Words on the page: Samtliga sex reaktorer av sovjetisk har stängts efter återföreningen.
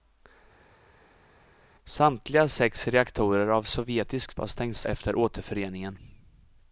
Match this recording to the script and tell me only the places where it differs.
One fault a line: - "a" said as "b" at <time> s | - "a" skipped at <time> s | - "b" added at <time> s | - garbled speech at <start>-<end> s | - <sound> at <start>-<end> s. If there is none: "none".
none